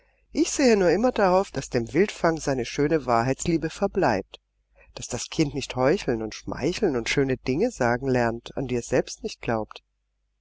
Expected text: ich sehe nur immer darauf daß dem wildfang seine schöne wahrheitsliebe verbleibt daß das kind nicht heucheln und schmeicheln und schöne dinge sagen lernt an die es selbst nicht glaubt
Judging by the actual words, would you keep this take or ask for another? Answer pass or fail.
pass